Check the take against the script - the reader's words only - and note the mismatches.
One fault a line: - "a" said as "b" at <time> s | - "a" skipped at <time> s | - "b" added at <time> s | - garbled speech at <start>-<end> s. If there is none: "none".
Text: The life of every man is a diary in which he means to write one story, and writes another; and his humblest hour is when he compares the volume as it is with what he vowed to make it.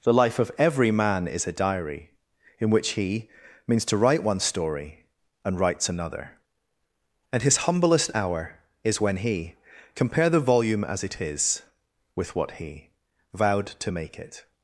- "compares" said as "compare" at 10.0 s